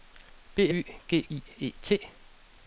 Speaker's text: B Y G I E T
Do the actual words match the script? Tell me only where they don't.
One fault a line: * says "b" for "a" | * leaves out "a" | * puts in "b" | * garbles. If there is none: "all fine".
all fine